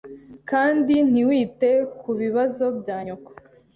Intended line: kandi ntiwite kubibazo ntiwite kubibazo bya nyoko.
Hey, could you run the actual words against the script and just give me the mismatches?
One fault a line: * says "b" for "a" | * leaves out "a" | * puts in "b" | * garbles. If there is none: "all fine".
* leaves out "ntiwite kubibazo"